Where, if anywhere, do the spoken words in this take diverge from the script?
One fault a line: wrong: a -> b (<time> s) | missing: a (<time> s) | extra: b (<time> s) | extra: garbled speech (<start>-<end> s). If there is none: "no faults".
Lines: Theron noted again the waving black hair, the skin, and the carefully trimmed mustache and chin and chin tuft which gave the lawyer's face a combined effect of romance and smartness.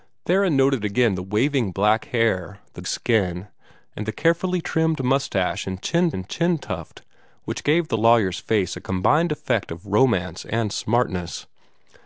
no faults